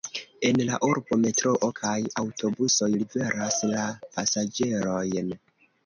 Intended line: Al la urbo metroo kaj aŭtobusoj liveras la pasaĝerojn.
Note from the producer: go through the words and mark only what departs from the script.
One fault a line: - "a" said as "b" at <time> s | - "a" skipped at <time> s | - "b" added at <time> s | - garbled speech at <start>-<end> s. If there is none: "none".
- "Al" said as "En" at 0.5 s